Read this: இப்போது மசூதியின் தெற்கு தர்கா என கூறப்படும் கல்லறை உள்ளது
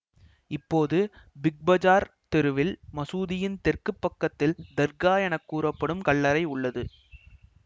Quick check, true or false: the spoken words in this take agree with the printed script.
false